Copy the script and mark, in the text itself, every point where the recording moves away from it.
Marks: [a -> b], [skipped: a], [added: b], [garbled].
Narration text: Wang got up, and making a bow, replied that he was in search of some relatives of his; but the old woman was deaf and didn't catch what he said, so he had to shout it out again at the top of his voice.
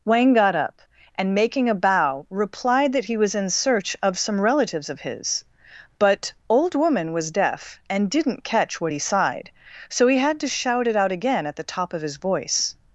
Wang got up, and making a bow, replied that he was in search of some relatives of his; but [skipped: the] old woman was deaf and didn't catch what he [said, -> sighed] so he had to shout it out again at the top of his voice.